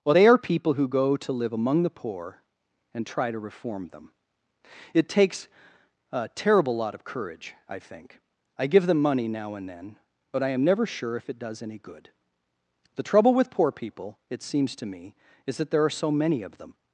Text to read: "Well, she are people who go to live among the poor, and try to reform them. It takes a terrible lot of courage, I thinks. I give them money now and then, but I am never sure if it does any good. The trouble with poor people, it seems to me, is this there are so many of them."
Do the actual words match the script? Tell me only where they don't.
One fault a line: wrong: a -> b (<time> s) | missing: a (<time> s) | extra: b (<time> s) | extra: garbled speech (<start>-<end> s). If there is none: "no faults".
wrong: she -> they (0.1 s)
wrong: thinks -> think (7.8 s)
wrong: this -> that (15.6 s)